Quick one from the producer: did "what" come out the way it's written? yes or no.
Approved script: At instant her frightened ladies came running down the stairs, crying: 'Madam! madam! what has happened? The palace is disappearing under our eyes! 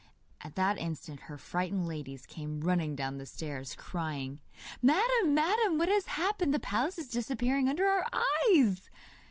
yes